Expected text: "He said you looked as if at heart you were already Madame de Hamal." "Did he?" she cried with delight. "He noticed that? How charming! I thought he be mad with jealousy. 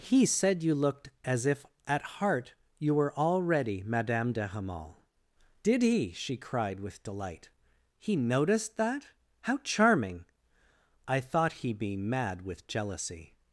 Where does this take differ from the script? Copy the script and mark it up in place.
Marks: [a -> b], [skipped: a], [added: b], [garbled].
"He said you looked as if at heart you were already Madame de Hamal." "Did he?" she cried with delight. "He noticed that? How charming! I thought he be mad with jealousy.